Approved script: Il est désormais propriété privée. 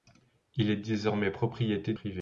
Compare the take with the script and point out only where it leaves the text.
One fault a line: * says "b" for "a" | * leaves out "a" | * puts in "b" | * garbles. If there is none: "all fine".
all fine